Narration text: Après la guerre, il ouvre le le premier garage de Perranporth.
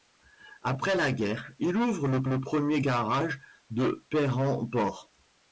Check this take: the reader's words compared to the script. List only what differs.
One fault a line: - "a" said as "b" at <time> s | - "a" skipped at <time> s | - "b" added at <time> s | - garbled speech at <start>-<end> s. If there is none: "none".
none